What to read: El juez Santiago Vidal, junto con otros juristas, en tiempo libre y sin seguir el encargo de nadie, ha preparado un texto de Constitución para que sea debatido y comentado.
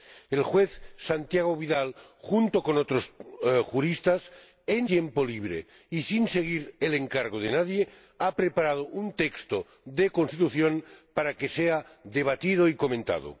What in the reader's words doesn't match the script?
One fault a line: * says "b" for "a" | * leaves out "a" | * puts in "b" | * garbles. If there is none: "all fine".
all fine